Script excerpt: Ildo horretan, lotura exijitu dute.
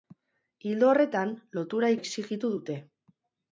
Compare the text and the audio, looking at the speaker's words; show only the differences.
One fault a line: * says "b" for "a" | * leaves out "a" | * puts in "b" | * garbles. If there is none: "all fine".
all fine